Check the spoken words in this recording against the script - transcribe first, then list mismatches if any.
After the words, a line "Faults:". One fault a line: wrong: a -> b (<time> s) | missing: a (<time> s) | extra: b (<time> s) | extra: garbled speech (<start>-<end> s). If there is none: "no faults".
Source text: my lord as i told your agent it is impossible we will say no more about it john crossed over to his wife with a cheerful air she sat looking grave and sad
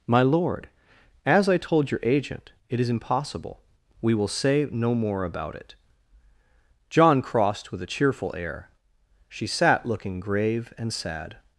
my lord as i told your agent it is impossible we will say no more about it john crossed with a cheerful air she sat looking grave and sad
Faults:
missing: over to his wife (7.7 s)